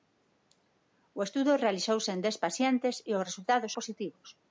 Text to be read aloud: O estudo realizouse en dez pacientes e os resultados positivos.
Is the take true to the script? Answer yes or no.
yes